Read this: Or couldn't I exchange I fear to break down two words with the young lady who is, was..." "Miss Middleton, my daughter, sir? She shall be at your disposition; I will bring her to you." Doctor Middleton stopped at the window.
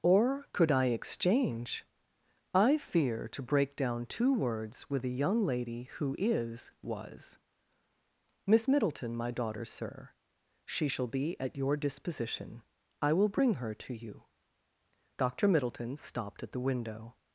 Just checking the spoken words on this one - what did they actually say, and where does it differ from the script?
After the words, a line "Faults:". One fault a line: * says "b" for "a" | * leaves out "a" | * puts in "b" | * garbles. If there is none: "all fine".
Or could I exchange I fear to break down two words with the young lady who is, was..." "Miss Middleton, my daughter, sir? She shall be at your disposition; I will bring her to you." Doctor Middleton stopped at the window.
Faults:
* says "could" for "couldn't"